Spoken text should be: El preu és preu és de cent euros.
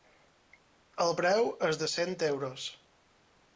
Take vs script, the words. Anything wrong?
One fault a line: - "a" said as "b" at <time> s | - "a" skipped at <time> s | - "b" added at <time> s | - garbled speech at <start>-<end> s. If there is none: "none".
- "preu és" skipped at 1.8 s